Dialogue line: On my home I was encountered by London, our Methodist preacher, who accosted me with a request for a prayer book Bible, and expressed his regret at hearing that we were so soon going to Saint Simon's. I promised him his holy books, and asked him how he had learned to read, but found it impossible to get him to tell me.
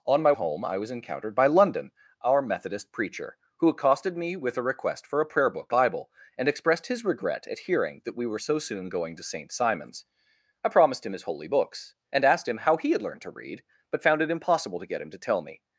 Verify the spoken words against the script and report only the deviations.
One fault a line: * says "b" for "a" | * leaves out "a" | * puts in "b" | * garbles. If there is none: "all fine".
all fine